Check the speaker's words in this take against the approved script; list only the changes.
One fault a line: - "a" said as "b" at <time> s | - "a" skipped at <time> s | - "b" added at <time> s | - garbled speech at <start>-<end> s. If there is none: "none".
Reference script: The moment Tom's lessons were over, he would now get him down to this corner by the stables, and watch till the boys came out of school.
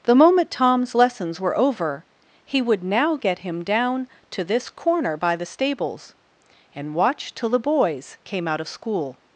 none